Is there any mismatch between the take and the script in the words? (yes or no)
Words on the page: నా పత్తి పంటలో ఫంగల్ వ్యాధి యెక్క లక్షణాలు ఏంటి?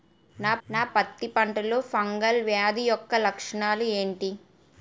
yes